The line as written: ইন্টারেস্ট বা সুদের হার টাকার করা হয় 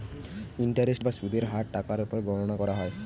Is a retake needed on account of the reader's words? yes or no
yes